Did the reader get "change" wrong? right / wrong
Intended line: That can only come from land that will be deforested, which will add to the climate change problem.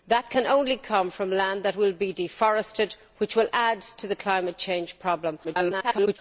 right